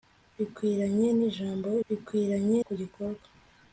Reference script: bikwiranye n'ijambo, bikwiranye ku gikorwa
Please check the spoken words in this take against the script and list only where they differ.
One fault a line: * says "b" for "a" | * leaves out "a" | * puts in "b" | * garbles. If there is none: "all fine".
all fine